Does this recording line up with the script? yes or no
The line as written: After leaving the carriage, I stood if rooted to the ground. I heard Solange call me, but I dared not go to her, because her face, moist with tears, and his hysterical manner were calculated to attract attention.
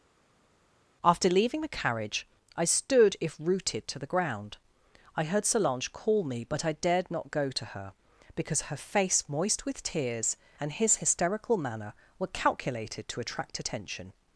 yes